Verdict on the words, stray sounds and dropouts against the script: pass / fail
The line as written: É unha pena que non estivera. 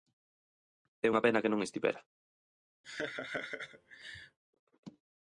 fail